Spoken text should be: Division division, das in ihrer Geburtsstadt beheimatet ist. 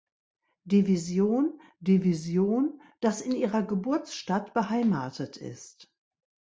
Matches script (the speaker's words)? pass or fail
pass